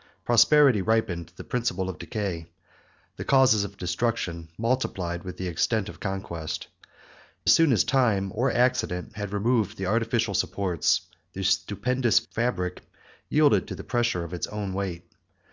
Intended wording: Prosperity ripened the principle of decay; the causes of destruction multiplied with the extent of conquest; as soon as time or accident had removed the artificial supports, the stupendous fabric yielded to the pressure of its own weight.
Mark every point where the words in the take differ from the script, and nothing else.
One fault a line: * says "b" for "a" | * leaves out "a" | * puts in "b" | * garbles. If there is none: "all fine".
all fine